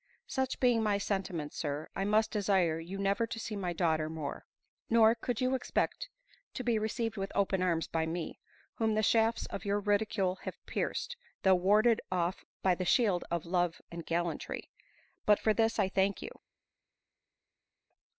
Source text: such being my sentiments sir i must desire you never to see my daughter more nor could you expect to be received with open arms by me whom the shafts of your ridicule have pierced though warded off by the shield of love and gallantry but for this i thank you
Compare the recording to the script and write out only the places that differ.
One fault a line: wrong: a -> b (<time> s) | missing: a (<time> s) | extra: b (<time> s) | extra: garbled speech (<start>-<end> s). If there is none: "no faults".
no faults